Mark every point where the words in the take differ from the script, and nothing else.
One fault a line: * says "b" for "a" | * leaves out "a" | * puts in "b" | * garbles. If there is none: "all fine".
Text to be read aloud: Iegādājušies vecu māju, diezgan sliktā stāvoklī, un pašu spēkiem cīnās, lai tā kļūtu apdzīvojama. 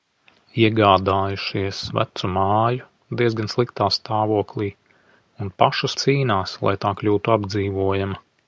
* leaves out "spēkiem"